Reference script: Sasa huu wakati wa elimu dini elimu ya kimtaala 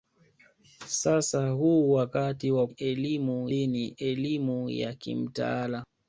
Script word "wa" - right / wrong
right